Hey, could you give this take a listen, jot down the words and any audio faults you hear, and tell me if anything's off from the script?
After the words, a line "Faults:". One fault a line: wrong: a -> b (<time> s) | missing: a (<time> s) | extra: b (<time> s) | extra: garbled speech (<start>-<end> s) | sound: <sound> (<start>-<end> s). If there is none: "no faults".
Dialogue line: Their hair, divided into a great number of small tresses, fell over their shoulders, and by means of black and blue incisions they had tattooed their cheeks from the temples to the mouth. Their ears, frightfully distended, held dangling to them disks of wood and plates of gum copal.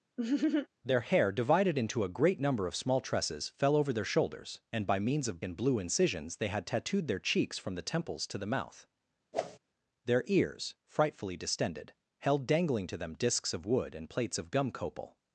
Their hair, divided into a great number of small tresses, fell over their shoulders, and by means of and blue incisions they had tattooed their cheeks from the temples to the mouth. Their ears, frightfully distended, held dangling to them disks of wood and plates of gum copal.
Faults:
sound: laugh (0.2-0.7 s)
missing: black (5.4 s)
sound: whoosh (9.3-9.6 s)